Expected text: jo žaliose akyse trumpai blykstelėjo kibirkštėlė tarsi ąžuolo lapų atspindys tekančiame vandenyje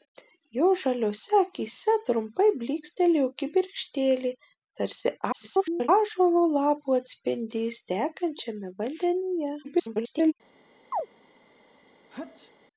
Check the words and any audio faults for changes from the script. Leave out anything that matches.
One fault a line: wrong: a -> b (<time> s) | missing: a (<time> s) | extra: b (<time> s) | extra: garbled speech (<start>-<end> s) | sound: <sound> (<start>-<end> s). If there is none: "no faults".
extra: garbled speech (5.3-5.9 s)
extra: garbled speech (9.6-10.3 s)
sound: chirp (10.9-11.1 s)
sound: sneeze (12.1-12.5 s)